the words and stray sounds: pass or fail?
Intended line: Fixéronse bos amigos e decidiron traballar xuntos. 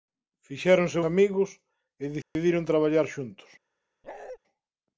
fail